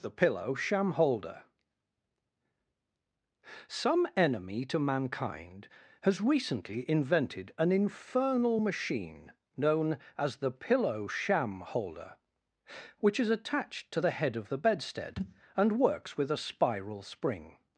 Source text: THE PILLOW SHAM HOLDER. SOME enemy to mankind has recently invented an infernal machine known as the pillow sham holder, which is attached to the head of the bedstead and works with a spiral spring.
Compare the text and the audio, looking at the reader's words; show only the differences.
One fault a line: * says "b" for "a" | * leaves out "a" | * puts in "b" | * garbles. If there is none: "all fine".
all fine